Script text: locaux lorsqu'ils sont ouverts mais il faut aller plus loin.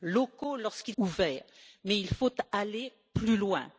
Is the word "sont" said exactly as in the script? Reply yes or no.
no